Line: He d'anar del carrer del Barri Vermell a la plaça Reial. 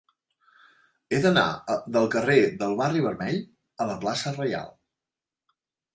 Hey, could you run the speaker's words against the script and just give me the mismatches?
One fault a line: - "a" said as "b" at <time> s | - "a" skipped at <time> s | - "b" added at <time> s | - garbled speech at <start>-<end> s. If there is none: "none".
none